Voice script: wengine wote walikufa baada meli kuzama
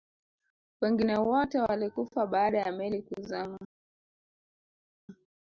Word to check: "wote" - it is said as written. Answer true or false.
true